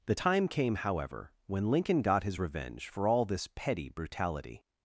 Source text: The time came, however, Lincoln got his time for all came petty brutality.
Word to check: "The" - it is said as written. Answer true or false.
true